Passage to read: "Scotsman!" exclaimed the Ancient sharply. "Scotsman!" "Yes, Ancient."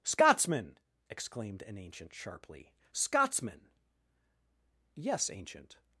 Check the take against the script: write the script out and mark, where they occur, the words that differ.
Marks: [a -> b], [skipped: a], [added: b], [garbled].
"Scotsman!" exclaimed [the -> an] Ancient sharply. "Scotsman!" "Yes, Ancient."